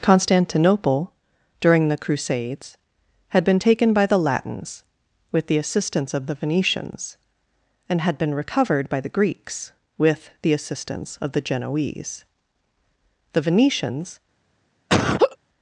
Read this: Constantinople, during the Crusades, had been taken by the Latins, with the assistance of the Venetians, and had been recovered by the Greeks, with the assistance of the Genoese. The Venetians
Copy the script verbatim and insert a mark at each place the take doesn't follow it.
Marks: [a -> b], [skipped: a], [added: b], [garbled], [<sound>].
Constantinople, during the Crusades, had been taken by the Latins, with the assistance of the Venetians, and had been recovered by the Greeks, with the assistance of the Genoese. The Venetians [laugh]